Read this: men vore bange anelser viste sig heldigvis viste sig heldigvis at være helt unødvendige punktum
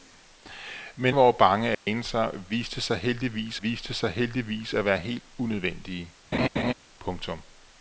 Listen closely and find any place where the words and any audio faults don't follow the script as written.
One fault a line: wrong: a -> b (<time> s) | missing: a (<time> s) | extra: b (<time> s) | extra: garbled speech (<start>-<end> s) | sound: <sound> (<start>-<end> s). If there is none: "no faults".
sound: dropout (1.7-1.9 s)
sound: laugh (6.3-6.7 s)